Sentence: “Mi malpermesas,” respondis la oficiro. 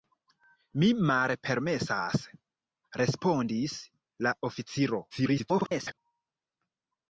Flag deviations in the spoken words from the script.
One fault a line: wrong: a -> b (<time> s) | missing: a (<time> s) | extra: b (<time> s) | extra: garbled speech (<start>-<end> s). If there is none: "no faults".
extra: garbled speech (5.1-6.0 s)